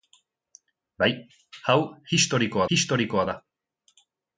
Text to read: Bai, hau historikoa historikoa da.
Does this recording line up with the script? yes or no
yes